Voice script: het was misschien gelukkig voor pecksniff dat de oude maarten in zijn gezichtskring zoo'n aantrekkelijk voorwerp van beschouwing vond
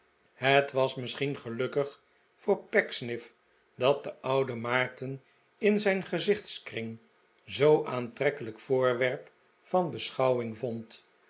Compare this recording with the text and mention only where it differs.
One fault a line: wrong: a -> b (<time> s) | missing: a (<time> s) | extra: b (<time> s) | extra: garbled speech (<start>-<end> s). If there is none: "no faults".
no faults